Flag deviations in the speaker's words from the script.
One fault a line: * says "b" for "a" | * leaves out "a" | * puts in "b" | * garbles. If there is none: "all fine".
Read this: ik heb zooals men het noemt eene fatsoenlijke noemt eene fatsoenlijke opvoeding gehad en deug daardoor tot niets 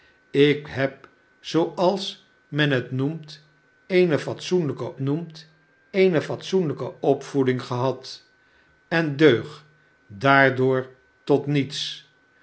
all fine